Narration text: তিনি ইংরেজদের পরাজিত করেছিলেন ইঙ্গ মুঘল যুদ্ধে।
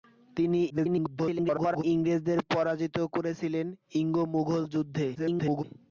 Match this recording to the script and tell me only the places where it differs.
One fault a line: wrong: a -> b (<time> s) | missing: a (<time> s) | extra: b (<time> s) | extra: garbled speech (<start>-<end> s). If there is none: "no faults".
extra: garbled speech (0.7-1.8 s)
extra: garbled speech (5.1-5.6 s)